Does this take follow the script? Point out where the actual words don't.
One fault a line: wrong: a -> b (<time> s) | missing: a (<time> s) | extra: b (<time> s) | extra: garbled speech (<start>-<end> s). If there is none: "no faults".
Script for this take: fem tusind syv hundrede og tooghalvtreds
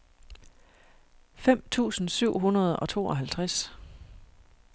no faults